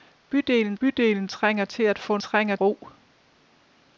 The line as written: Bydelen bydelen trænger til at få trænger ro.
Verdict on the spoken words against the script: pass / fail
pass